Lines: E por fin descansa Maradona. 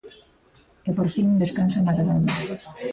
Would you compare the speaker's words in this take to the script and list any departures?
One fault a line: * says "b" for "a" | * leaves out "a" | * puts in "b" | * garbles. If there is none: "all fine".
all fine